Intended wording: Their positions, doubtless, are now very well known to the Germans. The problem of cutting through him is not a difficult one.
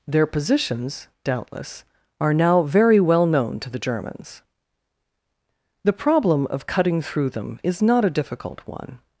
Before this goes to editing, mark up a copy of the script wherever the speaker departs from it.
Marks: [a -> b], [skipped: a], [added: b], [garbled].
Their positions, doubtless, are now very well known to the Germans. The problem of cutting through [him -> them] is not a difficult one.